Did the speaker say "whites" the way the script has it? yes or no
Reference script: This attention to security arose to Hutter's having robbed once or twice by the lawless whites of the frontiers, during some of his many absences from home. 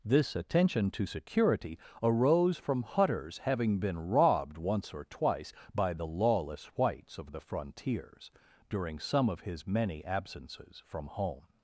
yes